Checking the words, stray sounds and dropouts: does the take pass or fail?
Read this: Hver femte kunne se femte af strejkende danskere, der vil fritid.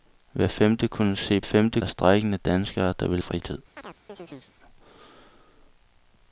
fail